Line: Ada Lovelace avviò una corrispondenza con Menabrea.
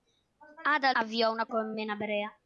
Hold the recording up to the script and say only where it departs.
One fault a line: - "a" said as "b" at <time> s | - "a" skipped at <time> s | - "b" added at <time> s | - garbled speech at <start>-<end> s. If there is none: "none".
- "Lovelace" skipped at 0.9 s
- "corrispondenza" skipped at 1.5 s